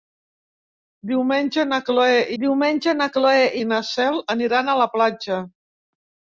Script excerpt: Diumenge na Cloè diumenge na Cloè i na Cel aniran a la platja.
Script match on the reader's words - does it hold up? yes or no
yes